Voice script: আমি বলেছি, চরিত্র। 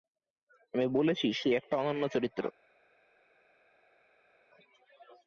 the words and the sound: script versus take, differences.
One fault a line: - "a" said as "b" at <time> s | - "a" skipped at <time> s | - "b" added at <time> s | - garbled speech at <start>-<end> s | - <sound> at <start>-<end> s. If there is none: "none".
- "সে একটা অনন্য" added at 1.3 s